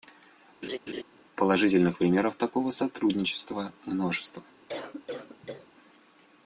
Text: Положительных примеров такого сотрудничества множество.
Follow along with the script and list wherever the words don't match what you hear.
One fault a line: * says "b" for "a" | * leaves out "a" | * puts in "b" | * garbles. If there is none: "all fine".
all fine